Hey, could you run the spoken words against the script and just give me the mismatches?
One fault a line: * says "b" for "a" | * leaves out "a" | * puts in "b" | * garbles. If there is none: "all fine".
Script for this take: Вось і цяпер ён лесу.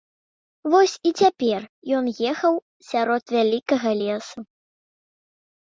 * puts in "ехаў сярод вялікага"